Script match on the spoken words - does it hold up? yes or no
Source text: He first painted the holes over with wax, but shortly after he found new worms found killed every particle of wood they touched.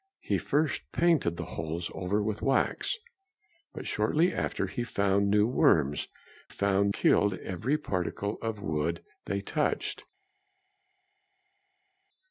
yes